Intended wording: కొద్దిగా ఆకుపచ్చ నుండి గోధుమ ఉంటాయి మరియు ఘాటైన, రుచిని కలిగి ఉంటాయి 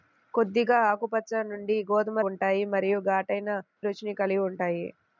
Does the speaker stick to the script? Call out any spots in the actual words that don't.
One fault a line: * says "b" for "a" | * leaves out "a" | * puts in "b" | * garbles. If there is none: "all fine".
all fine